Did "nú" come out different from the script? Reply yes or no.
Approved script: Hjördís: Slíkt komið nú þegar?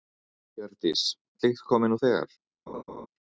no